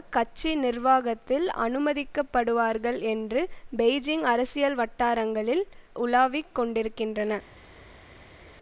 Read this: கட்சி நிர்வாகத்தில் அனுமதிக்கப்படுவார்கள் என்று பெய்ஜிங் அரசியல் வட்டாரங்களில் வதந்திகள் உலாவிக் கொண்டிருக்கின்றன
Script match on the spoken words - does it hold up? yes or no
no